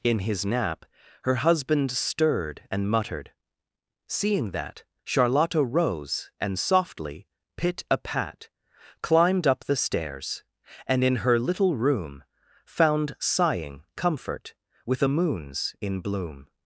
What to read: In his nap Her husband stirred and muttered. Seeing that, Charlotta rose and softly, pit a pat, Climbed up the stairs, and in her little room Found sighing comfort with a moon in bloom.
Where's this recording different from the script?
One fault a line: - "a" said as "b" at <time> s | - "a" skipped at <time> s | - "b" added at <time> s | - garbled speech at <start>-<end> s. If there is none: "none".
- "moon" said as "moons" at 15.0 s